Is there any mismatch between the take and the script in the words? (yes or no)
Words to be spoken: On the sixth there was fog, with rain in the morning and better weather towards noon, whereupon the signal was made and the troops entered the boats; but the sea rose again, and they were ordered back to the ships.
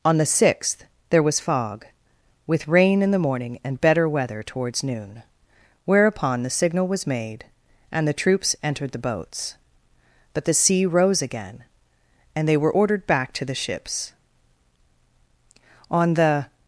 yes